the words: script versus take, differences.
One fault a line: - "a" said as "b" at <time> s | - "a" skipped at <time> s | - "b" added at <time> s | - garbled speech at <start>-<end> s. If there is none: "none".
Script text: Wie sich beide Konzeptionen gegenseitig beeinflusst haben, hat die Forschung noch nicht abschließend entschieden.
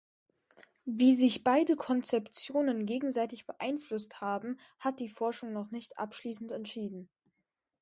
none